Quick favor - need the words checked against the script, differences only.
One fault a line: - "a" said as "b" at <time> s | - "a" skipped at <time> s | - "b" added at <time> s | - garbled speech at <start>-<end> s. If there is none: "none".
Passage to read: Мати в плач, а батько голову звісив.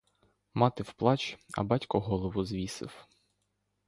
none